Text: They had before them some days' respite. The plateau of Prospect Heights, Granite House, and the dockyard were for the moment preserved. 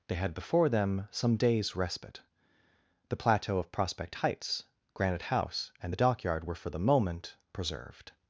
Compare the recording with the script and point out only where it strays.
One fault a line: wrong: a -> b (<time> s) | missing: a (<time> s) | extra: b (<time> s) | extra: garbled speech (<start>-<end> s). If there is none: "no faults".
no faults